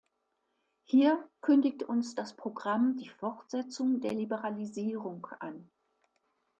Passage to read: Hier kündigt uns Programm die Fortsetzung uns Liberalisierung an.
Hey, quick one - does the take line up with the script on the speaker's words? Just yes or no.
no